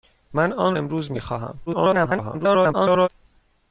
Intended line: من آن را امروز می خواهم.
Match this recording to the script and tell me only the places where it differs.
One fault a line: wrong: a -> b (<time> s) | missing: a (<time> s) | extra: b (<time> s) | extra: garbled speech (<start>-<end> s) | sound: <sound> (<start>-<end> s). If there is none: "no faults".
missing: را (0.8 s)
extra: garbled speech (1.7-3.1 s)